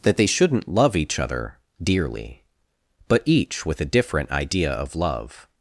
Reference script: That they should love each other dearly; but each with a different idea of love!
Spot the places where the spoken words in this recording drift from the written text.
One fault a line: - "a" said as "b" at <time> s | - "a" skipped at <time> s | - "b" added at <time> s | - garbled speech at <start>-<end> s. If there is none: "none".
- "should" said as "shouldn't" at 0.2 s